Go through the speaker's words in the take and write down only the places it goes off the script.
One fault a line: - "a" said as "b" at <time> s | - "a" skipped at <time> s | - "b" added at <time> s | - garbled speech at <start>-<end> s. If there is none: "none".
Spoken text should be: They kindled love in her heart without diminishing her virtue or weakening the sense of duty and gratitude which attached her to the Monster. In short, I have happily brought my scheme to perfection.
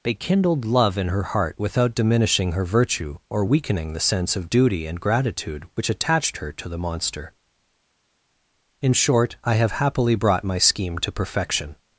none